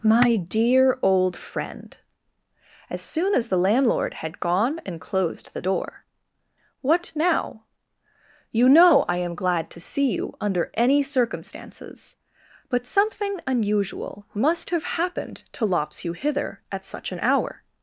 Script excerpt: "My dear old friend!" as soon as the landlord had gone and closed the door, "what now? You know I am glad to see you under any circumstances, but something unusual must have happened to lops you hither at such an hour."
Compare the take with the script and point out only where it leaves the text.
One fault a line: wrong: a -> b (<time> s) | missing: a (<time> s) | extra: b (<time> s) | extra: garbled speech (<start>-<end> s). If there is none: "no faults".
no faults